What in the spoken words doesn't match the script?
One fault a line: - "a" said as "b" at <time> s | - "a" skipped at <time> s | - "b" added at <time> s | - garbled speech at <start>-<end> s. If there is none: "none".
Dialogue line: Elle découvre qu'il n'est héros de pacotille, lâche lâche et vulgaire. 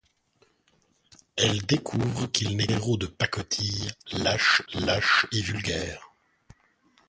none